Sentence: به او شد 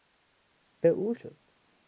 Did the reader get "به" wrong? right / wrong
right